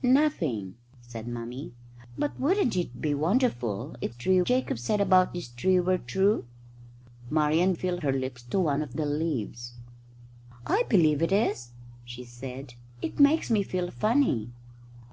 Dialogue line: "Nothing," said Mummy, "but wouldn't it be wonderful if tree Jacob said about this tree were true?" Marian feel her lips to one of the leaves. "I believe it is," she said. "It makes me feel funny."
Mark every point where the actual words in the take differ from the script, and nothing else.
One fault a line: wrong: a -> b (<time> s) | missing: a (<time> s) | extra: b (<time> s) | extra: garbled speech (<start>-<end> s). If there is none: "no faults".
no faults